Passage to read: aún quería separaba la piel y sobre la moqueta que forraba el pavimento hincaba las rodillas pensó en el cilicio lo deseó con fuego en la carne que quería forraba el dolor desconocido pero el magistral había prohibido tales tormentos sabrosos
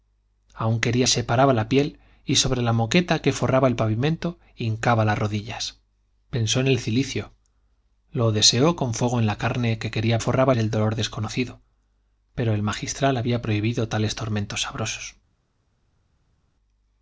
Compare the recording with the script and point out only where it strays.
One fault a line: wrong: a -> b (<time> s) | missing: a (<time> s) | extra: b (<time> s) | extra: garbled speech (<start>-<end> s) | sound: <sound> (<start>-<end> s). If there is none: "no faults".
no faults